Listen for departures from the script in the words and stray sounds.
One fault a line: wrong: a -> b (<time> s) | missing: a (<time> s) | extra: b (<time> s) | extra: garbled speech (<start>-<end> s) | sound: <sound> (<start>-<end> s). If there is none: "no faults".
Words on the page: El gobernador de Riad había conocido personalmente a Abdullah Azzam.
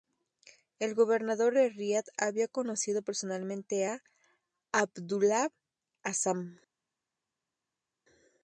no faults